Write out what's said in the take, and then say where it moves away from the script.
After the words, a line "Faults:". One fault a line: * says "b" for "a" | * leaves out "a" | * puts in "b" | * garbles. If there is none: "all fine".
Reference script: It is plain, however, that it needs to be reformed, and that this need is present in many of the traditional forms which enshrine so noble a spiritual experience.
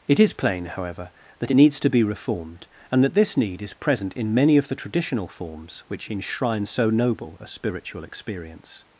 It is plain, however, that it needs to be reformed, and that this need is present in many of the traditional forms which enshrine so noble a spiritual experience.
Faults:
all fine